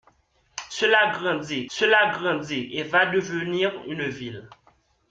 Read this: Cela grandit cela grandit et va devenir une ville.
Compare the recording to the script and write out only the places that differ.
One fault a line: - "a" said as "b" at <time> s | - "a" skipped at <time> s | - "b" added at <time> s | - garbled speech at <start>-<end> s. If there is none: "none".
none